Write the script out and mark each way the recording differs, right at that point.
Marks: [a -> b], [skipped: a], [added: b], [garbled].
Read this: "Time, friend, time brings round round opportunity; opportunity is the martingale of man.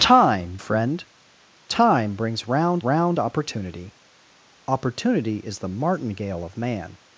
"Time, friend, time brings round round opportunity; opportunity is the martingale of man.